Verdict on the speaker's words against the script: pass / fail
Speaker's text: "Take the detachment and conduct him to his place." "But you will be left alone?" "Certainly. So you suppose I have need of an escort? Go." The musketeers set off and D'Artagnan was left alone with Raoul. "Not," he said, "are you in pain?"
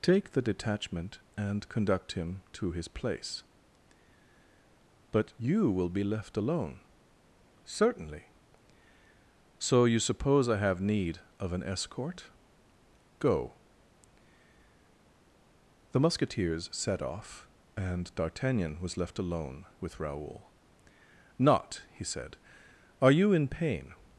pass